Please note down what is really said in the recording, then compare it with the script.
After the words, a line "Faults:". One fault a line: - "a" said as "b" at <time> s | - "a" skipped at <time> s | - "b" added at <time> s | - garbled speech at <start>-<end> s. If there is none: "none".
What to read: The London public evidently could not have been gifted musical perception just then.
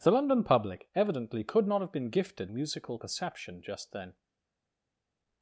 The London public evidently could not have been gifted musical perception just then.
Faults:
none